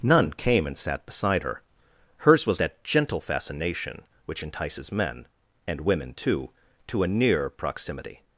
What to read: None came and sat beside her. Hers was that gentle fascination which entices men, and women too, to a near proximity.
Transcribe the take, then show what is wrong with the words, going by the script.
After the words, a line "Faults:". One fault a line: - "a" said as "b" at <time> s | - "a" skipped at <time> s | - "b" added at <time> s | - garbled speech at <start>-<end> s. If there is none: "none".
None came and sat beside her. Hers was that gentle fascination which entices men, and women too, to a near proximity.
Faults:
none